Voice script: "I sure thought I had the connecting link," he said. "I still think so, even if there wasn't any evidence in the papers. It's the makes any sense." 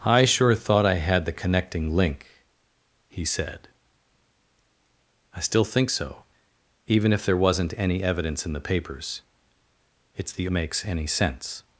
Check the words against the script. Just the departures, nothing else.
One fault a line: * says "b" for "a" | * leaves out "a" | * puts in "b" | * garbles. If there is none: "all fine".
all fine